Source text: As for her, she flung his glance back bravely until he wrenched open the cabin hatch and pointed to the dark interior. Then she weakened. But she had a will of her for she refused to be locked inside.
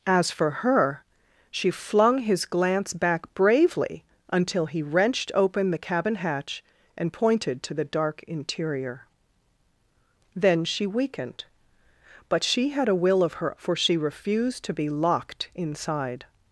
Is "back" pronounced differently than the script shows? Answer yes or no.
no